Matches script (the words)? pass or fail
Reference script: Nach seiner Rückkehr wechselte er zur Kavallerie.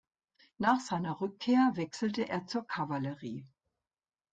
pass